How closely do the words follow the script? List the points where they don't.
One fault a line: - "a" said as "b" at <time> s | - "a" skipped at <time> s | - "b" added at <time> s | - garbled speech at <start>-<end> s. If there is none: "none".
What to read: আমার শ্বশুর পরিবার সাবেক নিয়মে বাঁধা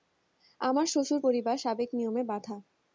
none